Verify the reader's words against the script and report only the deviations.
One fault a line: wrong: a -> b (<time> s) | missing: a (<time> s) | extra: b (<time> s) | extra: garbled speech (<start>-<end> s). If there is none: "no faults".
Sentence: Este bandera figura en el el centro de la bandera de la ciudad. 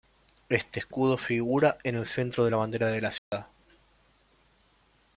wrong: bandera -> escudo (0.8 s)
missing: el (2.1 s)